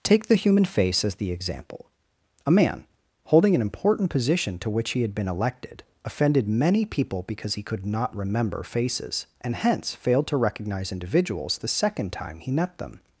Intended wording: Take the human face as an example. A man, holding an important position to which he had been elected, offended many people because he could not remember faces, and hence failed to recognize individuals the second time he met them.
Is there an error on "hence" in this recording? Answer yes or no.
no